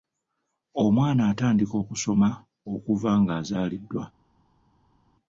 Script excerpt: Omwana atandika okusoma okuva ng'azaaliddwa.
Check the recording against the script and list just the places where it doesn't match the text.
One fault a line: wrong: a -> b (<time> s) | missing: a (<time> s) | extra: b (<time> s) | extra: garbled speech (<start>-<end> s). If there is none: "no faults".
no faults